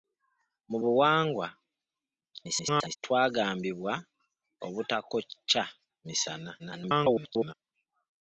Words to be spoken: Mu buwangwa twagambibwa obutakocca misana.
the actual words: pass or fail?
fail